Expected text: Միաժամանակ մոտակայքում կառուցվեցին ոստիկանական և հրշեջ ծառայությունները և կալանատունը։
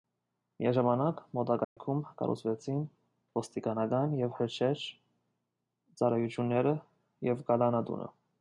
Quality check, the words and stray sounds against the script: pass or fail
fail